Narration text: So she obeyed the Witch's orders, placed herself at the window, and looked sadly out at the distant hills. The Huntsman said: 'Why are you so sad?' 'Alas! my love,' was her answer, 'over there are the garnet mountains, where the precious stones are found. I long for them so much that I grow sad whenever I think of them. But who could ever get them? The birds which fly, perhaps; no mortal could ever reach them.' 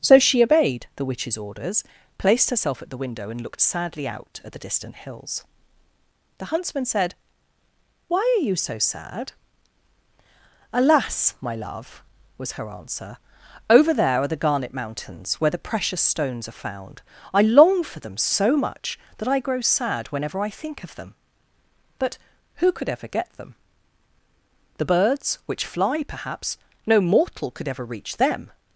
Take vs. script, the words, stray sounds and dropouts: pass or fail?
pass